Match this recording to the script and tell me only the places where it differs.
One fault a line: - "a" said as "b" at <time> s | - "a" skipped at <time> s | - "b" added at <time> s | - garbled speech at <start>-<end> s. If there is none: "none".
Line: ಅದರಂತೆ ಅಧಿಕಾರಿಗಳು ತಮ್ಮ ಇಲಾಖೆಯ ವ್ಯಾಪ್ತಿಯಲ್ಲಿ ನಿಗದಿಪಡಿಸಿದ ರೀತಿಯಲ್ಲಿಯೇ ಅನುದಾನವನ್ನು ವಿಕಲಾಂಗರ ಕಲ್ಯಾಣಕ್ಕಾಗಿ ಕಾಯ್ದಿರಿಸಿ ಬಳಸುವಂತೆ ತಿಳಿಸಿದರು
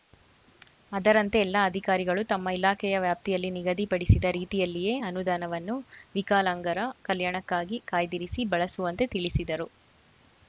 - "ಎಲ್ಲ" added at 1.4 s